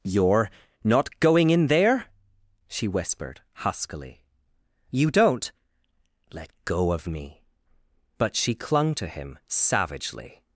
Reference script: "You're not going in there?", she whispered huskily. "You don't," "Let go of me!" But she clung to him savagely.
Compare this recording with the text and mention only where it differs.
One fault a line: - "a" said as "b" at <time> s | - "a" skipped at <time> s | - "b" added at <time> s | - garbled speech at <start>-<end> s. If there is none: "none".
none